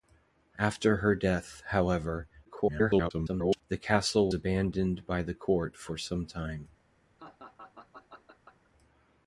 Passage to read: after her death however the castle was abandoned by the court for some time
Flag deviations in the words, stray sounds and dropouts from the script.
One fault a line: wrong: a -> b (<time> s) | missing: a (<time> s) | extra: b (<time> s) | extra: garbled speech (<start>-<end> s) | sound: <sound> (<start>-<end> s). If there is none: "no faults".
extra: garbled speech (2.4-3.6 s)
missing: was (4.3 s)
sound: laugh (7.2-8.7 s)